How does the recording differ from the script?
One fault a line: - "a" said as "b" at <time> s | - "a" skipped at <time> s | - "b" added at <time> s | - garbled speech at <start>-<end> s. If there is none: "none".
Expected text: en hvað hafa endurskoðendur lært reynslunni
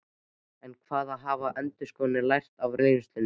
- "af" added at 2.7 s